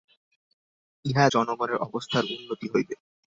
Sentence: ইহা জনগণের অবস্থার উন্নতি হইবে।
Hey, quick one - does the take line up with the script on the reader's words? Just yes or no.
yes